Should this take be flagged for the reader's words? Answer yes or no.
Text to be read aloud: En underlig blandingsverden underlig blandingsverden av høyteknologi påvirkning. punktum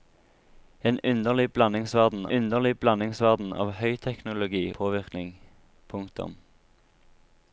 no